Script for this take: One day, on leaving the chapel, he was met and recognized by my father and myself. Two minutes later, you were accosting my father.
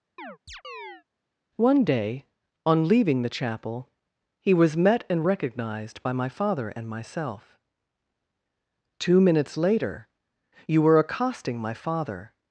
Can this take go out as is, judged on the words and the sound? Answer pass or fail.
fail